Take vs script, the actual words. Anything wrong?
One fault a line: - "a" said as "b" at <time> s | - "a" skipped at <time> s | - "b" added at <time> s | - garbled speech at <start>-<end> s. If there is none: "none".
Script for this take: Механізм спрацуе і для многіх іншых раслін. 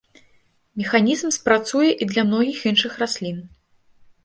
none